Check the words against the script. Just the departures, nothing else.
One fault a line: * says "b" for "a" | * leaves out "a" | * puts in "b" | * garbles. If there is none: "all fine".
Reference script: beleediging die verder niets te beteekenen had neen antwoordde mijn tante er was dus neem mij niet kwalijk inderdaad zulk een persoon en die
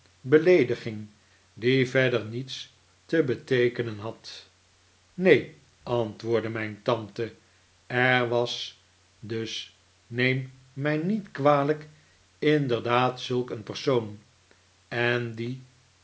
all fine